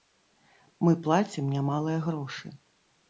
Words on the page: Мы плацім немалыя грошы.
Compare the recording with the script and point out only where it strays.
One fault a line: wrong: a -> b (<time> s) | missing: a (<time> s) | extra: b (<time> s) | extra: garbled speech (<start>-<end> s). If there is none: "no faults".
no faults